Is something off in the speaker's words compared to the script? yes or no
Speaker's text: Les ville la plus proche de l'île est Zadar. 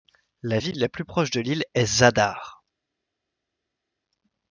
yes